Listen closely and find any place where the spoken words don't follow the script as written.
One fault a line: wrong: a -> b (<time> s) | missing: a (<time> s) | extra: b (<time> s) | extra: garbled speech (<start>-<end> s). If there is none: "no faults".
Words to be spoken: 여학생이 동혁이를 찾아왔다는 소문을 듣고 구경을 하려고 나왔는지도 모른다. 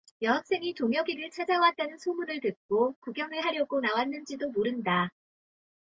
no faults